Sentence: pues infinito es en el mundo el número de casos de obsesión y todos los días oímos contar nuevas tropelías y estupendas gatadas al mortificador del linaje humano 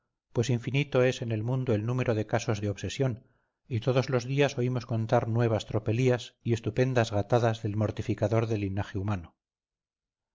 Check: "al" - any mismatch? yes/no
yes